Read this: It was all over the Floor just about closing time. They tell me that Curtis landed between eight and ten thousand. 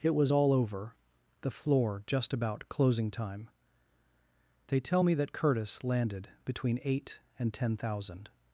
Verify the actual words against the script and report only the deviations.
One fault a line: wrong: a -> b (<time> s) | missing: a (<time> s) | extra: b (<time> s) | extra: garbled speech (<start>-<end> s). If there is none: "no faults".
no faults